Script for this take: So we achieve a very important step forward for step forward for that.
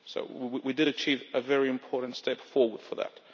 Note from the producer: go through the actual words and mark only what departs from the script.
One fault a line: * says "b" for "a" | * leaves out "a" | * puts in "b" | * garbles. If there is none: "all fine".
* puts in "did"
* leaves out "step forward for"